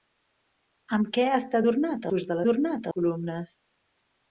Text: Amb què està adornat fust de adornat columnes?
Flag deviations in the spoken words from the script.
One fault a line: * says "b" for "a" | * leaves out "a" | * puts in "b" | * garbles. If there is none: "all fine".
all fine